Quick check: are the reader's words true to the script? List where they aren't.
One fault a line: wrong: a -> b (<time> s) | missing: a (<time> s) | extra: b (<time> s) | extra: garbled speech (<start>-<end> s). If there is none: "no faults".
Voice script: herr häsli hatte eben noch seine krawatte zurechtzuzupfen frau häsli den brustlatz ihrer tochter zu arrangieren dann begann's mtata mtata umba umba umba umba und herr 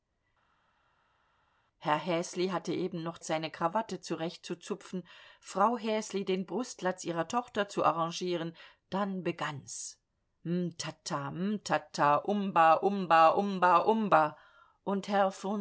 no faults